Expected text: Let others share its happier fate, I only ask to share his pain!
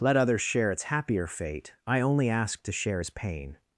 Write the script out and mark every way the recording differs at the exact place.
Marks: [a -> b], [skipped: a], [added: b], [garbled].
Let others share its happier fate, I only ask to share his pain!